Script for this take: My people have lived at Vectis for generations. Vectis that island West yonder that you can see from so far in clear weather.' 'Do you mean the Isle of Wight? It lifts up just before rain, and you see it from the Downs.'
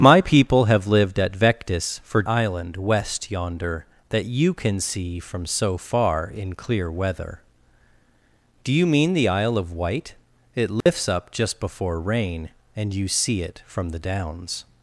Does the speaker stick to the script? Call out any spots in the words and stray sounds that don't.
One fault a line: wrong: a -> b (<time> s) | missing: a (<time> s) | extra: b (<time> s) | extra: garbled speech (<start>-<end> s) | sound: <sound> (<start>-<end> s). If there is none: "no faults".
missing: generations Vectis that (2.2 s)
sound: dropout (10.8-10.9 s)